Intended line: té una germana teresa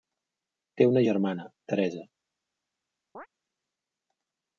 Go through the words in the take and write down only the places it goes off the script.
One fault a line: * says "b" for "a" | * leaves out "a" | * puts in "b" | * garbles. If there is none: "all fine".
all fine